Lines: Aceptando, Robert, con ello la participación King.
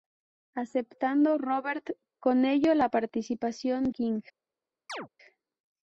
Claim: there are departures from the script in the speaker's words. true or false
false